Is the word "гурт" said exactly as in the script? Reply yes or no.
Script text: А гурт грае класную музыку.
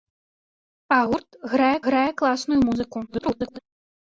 yes